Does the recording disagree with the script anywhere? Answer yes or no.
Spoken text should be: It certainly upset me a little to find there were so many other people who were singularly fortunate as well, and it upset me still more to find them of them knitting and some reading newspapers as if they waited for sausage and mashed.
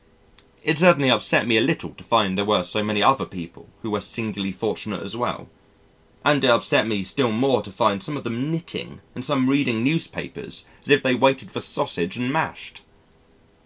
yes